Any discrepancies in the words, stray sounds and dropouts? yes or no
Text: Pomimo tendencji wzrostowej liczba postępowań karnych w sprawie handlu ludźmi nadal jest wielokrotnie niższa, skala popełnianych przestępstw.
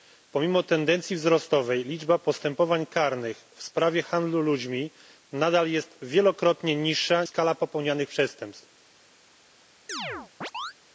yes